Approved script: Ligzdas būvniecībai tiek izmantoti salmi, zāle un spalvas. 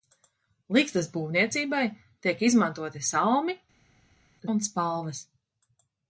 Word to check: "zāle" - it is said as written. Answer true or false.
false